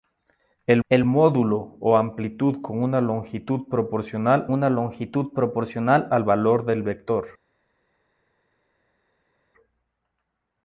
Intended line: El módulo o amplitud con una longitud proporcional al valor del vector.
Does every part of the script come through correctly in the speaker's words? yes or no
no